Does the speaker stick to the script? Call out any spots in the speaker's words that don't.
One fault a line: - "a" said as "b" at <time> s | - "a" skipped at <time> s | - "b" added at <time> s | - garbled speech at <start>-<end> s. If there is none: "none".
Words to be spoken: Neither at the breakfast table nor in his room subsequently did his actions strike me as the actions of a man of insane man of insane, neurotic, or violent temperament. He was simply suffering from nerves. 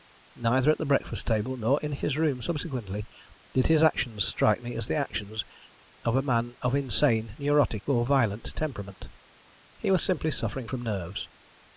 - "man of insane" skipped at 7.3 s